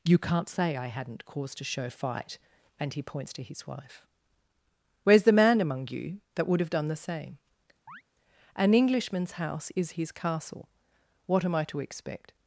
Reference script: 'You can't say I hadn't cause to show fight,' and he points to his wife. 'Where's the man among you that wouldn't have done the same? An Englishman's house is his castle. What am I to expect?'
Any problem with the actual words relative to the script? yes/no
yes